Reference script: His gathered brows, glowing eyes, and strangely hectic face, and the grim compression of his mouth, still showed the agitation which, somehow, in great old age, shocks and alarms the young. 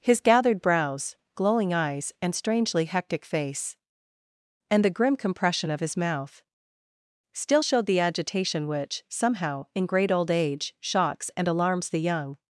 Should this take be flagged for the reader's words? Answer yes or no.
no